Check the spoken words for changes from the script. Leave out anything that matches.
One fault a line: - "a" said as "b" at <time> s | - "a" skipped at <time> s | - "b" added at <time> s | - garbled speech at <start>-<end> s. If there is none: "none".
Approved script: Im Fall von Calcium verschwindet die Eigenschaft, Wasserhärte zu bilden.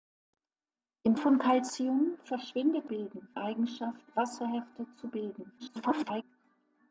- "Fall" skipped at 1.1 s
- "die" said as "bilden" at 2.8 s
- garbled speech at 5.6-6.2 s